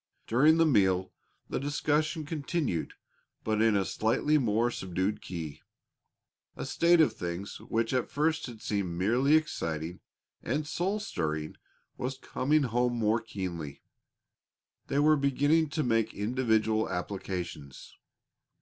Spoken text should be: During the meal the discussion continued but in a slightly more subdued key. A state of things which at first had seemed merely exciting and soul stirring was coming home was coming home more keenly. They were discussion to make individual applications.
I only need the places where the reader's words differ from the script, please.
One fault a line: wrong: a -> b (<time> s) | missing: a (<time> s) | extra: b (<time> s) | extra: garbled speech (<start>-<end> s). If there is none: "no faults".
missing: was coming home (13.0 s)
wrong: discussion -> beginning (15.2 s)